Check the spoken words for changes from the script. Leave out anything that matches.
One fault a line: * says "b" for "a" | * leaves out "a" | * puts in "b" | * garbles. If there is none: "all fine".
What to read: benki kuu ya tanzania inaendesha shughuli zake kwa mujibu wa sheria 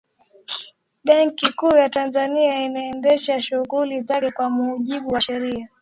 all fine